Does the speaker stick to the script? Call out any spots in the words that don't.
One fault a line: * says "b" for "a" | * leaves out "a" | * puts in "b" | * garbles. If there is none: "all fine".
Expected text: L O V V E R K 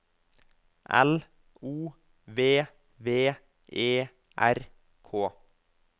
all fine